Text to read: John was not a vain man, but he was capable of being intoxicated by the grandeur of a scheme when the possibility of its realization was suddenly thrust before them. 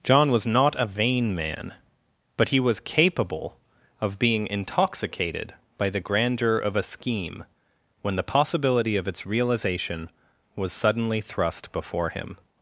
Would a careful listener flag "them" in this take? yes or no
yes